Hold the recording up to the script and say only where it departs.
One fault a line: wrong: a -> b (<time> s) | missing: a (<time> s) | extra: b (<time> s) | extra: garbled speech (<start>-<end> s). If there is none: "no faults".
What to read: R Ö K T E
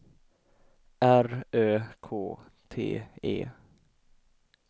no faults